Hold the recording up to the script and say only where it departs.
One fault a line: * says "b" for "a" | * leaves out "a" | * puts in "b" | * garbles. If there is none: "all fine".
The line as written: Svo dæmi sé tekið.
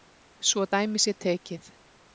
all fine